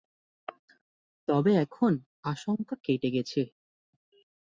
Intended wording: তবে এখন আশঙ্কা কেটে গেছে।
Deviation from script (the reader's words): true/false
false